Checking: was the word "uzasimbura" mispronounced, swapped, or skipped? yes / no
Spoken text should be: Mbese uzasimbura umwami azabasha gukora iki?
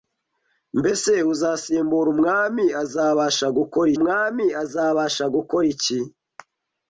no